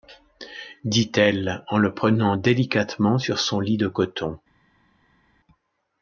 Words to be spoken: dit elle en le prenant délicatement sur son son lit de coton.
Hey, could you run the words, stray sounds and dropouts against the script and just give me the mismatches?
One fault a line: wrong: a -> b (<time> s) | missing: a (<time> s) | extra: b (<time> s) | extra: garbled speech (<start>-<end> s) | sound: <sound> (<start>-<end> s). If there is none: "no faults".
missing: son (3.6 s)